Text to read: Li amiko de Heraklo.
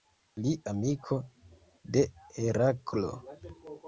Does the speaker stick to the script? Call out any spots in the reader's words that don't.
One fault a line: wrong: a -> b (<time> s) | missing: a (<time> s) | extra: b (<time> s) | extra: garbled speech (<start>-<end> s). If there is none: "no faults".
no faults